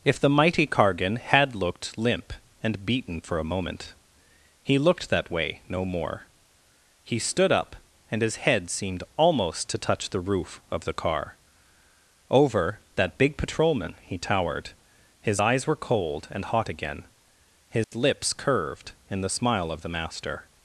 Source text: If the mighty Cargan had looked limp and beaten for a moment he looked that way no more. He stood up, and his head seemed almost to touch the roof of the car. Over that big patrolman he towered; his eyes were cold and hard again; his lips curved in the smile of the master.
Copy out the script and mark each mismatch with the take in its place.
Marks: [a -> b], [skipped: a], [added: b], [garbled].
If the mighty Cargan had looked limp and beaten for a moment he looked that way no more. He stood up, and his head seemed almost to touch the roof of the car. Over that big patrolman he towered; his eyes were cold and [hard -> hot] again; his lips curved in the smile of the master.